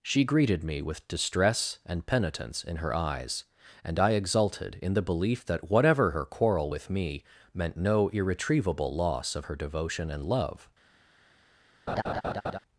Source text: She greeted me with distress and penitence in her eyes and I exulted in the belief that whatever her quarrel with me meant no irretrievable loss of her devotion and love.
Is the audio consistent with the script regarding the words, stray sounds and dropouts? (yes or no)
no